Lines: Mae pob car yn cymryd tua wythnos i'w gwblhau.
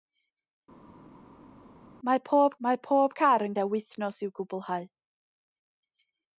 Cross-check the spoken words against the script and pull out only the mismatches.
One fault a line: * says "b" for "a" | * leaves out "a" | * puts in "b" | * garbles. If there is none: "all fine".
* puts in "mae pob"
* leaves out "cymryd"